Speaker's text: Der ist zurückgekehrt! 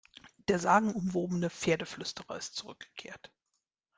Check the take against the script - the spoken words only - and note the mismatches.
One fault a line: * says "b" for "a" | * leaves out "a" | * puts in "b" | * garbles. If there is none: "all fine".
* puts in "sagenumwobene Pferdeflüsterer"